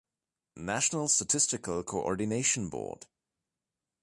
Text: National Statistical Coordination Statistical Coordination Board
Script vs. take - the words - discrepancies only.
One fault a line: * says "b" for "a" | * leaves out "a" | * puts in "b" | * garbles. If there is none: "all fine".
* leaves out "Statistical Coordination"